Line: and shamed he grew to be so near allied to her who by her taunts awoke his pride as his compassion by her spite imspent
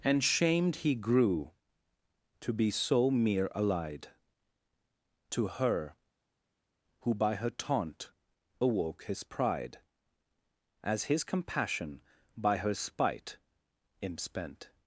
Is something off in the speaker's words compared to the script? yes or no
yes